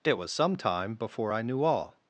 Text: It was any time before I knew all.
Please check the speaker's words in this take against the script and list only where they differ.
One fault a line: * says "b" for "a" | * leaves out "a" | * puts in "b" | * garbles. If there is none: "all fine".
* says "some" for "any"